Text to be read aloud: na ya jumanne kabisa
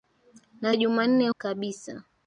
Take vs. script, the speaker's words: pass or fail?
pass